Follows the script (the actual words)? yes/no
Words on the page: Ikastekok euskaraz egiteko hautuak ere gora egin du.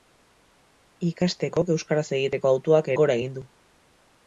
no